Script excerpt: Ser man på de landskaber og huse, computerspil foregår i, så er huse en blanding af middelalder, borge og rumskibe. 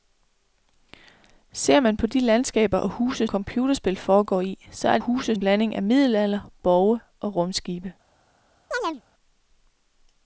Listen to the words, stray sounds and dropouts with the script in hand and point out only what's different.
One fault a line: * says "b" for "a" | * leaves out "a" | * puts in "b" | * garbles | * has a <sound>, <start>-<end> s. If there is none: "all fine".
* has a chirp, 8.7-9.0 s